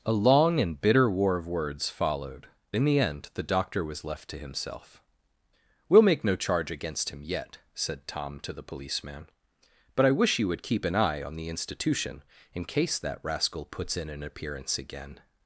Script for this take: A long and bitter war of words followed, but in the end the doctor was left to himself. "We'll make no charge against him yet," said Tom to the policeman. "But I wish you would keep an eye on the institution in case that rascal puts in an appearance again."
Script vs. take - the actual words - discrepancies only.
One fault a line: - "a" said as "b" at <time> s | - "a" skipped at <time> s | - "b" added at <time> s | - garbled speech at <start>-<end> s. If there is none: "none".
- "but" skipped at 2.5 s